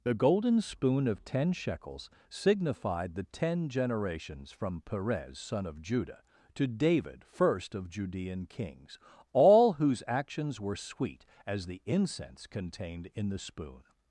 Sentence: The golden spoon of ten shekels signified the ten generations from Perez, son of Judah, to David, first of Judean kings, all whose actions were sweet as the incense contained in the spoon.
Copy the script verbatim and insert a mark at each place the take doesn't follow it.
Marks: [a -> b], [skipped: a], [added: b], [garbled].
The golden spoon of ten shekels signified the ten generations from Perez, son of Judah, to David, first of Judean kings, all whose actions were sweet as the incense contained in the spoon.